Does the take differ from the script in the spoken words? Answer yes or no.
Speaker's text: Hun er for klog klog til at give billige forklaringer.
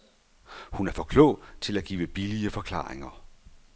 yes